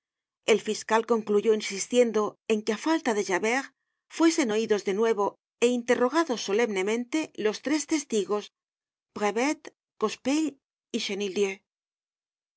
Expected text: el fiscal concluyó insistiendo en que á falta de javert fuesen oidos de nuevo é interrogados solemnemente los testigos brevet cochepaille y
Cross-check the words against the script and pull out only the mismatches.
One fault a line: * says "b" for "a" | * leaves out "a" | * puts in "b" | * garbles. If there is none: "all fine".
* puts in "tres"